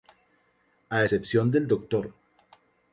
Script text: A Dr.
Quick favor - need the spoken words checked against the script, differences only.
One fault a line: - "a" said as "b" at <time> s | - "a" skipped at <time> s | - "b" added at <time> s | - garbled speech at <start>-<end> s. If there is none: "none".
- "excepción del" added at 1.0 s